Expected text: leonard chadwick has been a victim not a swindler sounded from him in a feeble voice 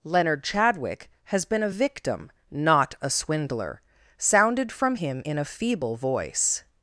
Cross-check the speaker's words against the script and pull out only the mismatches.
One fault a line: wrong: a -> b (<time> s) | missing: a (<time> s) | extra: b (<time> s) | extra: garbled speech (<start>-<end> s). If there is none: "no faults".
no faults